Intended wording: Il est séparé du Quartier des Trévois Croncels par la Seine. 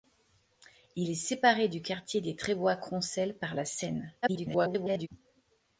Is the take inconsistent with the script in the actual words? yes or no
yes